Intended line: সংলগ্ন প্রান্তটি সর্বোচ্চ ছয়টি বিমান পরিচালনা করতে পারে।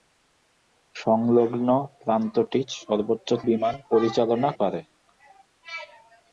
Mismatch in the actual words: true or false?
true